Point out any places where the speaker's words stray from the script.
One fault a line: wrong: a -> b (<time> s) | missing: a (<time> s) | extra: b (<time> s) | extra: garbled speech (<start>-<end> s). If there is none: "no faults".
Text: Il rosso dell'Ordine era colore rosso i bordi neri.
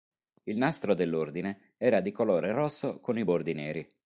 wrong: rosso -> nastro (0.6 s)
extra: di (2.0 s)
extra: con (3.0 s)